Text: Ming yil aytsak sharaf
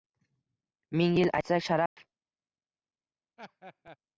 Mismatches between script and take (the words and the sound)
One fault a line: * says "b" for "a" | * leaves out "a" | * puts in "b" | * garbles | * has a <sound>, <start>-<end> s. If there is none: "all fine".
* has a dropout, 1.9-2.0 s
* has a laugh, 3.4-4.0 s